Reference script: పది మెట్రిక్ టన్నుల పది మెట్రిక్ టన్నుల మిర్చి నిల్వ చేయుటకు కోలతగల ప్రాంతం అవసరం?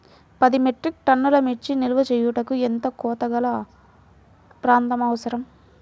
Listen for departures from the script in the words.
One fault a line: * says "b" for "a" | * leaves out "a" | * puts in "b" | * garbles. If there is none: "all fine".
* leaves out "పది మెట్రిక్ టన్నుల"
* puts in "ఎంత"